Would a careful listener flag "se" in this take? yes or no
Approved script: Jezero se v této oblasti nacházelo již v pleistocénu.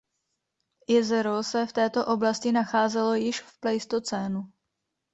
no